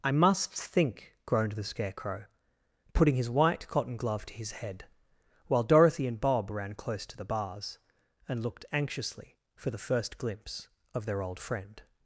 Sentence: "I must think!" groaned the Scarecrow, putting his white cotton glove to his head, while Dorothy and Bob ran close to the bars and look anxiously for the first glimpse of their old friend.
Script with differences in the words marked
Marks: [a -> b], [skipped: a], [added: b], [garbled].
"I must think!" groaned the Scarecrow, putting his white cotton glove to his head, while Dorothy and Bob ran close to the bars and [look -> looked] anxiously for the first glimpse of their old friend.